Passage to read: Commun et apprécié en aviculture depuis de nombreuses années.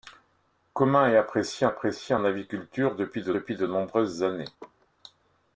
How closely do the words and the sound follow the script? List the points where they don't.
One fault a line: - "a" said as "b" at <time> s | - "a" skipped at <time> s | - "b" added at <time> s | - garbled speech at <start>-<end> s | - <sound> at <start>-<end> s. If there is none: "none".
- "apprécié" added at 1.7 s
- "depuis de" added at 3.3 s
- laugh at 4.6-4.9 s